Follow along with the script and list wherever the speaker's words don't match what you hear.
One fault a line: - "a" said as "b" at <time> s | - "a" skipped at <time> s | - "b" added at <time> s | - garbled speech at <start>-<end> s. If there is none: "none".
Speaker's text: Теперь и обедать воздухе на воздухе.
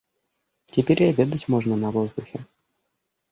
- "воздухе" said as "можно" at 1.5 s